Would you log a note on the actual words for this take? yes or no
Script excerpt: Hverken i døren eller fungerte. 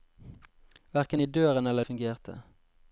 no